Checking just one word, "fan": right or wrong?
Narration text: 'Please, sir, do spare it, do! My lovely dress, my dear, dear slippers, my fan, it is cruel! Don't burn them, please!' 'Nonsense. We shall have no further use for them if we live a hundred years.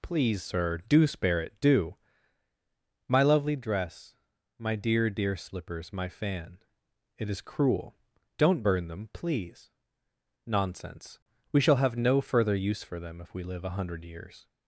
right